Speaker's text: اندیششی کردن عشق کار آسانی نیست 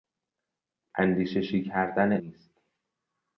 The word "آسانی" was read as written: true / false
false